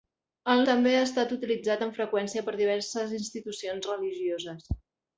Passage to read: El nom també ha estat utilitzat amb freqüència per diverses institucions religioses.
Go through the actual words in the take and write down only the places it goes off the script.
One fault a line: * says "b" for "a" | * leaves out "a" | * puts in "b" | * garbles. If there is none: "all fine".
* leaves out "nom"